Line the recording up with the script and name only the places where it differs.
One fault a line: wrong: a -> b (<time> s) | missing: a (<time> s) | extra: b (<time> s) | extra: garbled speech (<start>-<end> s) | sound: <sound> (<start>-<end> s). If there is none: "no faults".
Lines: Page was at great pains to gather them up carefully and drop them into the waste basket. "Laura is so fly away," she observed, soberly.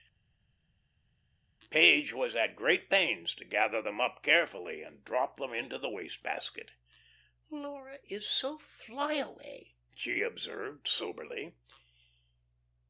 no faults